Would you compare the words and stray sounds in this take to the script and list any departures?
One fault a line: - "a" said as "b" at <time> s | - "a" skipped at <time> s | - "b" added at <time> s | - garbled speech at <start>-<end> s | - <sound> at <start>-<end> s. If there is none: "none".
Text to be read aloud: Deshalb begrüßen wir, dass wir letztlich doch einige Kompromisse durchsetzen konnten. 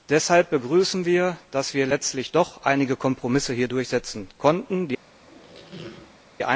- squeak at 5.2-6.2 s